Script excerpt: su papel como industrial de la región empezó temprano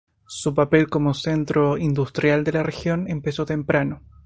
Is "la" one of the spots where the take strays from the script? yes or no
no